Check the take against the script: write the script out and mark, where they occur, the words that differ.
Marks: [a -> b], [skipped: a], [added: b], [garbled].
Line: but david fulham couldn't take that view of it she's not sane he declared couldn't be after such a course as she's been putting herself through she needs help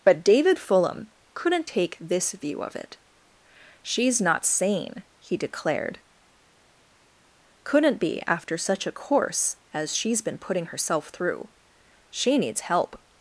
but david fulham couldn't take [that -> this] view of it she's not sane he declared couldn't be after such a course as she's been putting herself through she needs help